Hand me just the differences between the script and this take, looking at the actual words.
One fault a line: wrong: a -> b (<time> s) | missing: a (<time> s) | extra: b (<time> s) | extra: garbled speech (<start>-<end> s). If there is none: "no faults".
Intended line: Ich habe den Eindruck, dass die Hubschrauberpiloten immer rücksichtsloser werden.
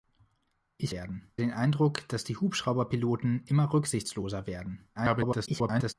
wrong: habe -> werden (0.9 s)
extra: garbled speech (4.9-5.9 s)